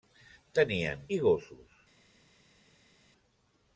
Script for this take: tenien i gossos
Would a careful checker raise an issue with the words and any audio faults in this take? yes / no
no